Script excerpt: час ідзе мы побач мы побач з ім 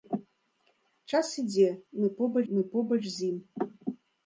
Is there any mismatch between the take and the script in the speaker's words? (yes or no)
no